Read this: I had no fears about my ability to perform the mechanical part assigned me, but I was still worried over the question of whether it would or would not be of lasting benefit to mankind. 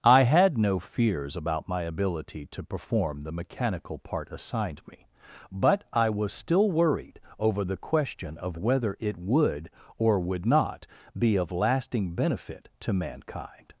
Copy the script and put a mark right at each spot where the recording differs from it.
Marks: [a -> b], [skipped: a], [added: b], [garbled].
I had no fears about my ability to perform the mechanical part assigned me, but I was still worried over the question of whether it would or would not be of lasting benefit to mankind.